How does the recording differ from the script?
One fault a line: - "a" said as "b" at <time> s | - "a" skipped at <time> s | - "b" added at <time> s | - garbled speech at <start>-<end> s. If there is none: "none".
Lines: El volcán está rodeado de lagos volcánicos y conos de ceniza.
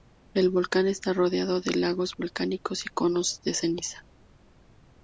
none